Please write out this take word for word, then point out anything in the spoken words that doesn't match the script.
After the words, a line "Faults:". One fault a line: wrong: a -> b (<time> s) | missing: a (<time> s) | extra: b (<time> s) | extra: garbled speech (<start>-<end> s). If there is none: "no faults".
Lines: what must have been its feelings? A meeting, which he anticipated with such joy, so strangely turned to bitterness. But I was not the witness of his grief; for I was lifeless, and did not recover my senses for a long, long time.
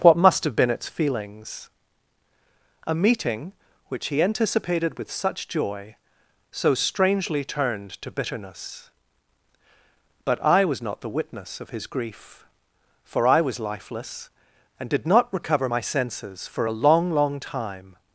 what must have been its feelings? A meeting, which he anticipated with such joy, so strangely turned to bitterness. But I was not the witness of his grief; for I was lifeless, and did not recover my senses for a long, long time.
Faults:
no faults